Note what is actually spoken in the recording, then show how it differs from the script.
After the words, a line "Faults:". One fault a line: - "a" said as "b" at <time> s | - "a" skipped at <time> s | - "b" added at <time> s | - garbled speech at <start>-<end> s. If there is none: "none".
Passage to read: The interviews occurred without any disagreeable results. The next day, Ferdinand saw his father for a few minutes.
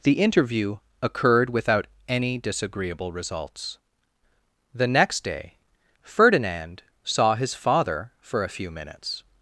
The interview occurred without any disagreeable results. The next day, Ferdinand saw his father for a few minutes.
Faults:
- "interviews" said as "interview" at 0.1 s